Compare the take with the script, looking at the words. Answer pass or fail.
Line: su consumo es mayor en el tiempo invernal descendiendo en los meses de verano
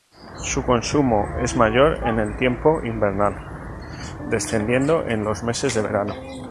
pass